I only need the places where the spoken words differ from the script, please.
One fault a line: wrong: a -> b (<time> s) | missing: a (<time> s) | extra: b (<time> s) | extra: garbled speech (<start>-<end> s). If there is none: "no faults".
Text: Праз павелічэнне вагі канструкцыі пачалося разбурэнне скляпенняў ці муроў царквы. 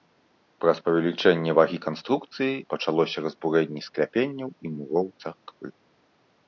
wrong: ці -> і (4.6 s)